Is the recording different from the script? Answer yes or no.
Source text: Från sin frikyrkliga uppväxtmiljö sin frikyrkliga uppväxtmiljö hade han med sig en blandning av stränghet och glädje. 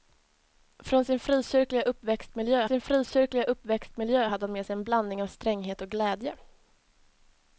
no